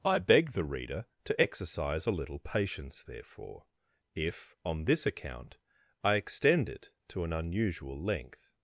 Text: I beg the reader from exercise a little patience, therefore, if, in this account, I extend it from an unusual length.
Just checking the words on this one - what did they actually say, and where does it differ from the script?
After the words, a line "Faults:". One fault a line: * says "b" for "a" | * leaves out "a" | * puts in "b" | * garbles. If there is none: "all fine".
I beg the reader to exercise a little patience, therefore, if, on this account, I extend it to an unusual length.
Faults:
* says "to" for "from"
* says "on" for "in"
* says "to" for "from"